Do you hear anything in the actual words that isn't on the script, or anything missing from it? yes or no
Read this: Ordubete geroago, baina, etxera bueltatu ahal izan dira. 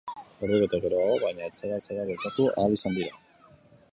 yes